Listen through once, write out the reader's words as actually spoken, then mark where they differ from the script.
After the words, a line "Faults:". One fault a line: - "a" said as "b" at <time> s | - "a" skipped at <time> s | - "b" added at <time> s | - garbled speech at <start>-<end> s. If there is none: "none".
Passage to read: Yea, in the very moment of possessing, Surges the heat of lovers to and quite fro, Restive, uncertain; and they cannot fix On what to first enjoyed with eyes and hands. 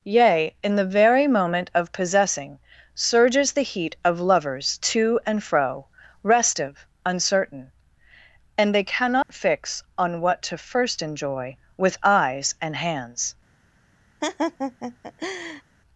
Yea, in the very moment of possessing, Surges the heat of lovers to and fro, Restive, uncertain; and they cannot fix On what to first enjoy with eyes and hands.
Faults:
- "quite" skipped at 5.4 s
- "enjoyed" said as "enjoy" at 11.0 s